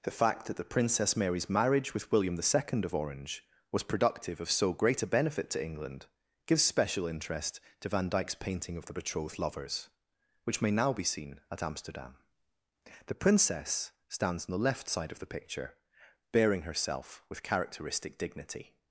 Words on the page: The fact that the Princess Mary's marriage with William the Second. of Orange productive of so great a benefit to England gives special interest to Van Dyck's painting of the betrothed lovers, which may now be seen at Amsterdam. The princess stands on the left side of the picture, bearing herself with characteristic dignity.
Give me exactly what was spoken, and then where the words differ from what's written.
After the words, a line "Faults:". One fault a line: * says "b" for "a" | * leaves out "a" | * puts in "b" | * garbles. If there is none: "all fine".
The fact that the Princess Mary's marriage with William the Second. of Orange was productive of so great a benefit to England gives special interest to Van Dyck's painting of the betrothed lovers, which may now be seen at Amsterdam. The princess stands on the left side of the picture, bearing herself with characteristic dignity.
Faults:
* puts in "was"